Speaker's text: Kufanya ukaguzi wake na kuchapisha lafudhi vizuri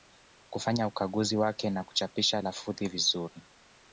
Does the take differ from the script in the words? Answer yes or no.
no